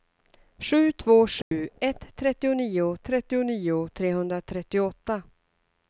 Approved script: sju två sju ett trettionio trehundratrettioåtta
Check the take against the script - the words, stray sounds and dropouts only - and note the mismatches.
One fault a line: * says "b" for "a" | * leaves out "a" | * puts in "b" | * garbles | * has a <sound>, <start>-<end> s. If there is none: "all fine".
* has a dropout, 1.4-1.5 s
* puts in "trettionio"